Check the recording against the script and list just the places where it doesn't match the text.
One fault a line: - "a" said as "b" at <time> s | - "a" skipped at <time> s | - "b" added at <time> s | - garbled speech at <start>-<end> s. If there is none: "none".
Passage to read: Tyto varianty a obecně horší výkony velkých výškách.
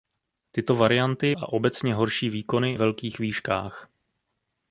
none